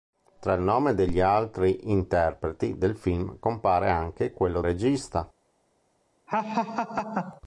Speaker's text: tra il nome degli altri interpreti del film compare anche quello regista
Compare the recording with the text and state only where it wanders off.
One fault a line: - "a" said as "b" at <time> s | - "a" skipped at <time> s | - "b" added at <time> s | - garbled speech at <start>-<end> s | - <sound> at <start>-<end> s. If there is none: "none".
- laugh at 6.3-7.4 s